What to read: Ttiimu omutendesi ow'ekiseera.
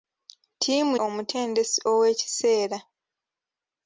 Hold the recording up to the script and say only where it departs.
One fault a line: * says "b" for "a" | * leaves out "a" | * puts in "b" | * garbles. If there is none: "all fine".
all fine